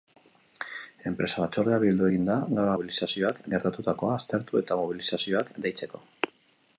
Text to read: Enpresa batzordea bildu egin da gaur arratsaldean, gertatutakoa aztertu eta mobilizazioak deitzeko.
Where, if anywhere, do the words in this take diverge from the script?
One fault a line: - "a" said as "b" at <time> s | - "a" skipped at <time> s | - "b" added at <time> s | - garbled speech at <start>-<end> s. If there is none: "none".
- "arratsaldean" said as "mobilizazioak" at 2.7 s